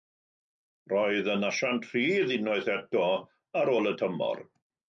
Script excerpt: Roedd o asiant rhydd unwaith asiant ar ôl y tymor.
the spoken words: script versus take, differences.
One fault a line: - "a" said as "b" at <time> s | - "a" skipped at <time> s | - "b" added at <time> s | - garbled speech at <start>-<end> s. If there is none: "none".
- "o" said as "yn" at 1.3 s
- "asiant" said as "eto" at 2.8 s